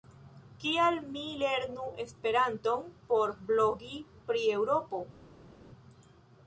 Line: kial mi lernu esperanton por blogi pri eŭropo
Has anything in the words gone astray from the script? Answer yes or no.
no